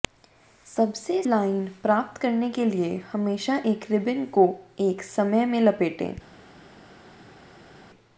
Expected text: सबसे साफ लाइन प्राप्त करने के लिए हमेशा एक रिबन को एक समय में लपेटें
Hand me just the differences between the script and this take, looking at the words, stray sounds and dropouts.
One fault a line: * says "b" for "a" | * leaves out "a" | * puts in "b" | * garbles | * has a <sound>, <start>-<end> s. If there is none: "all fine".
* leaves out "साफ"